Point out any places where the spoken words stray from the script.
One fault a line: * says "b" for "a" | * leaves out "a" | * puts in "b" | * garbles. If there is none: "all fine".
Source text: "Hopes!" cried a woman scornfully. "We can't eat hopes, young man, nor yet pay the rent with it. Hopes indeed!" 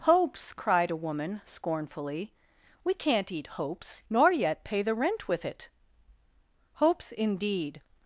* leaves out "young man"